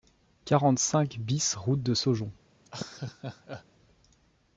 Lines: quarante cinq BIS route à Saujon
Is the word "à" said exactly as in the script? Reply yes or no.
no